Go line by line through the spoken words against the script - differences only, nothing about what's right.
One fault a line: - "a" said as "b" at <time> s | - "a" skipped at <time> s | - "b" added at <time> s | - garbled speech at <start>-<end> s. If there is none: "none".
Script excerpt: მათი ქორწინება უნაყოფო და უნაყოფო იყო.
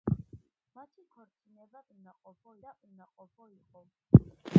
none